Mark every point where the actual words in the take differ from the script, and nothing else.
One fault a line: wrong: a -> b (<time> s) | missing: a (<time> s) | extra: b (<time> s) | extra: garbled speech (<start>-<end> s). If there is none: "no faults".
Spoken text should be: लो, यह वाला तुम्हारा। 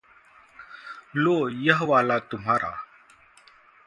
no faults